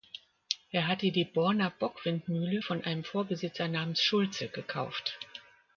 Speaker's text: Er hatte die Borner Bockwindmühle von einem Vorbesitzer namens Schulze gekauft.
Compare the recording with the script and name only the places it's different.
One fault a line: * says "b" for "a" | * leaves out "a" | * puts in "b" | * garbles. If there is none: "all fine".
all fine